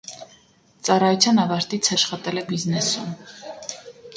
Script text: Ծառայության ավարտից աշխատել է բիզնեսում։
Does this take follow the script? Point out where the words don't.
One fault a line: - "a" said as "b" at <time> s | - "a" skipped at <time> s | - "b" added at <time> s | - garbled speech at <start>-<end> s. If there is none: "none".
none